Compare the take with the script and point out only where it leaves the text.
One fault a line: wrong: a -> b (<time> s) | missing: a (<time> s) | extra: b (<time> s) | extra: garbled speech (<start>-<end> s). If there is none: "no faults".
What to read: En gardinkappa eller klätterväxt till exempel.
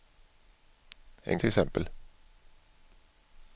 missing: gardinkappa eller klätterväxt (1.4 s)